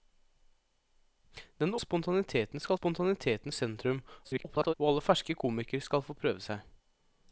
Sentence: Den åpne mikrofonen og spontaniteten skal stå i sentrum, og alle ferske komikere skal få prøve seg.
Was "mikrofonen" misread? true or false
true